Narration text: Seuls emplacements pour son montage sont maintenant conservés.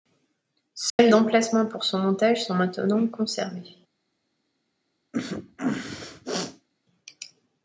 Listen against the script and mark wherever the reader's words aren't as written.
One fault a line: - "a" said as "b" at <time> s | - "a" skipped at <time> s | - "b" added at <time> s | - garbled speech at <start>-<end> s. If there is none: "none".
none